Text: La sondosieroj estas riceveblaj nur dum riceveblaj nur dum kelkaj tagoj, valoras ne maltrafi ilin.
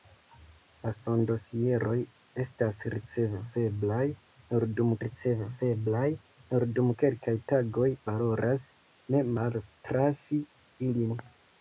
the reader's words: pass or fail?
pass